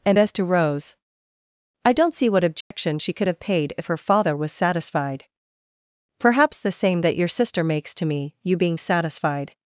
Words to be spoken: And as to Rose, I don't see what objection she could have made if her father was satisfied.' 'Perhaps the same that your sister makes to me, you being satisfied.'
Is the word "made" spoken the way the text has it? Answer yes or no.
no